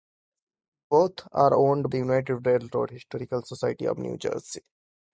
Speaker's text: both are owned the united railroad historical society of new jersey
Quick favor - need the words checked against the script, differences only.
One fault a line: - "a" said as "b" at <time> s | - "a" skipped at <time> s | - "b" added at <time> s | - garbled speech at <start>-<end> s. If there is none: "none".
none